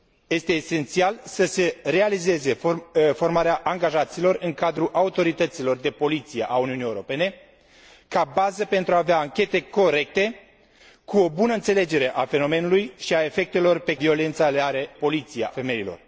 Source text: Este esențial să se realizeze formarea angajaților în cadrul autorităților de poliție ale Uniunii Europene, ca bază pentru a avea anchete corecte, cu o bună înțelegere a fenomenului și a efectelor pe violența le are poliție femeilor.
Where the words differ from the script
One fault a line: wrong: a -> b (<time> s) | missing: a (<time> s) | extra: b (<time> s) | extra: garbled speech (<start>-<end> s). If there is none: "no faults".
no faults